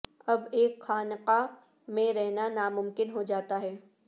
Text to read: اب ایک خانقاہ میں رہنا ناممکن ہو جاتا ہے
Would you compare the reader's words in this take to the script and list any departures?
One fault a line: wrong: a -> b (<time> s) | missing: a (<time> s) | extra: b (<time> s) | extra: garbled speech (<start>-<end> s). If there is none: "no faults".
no faults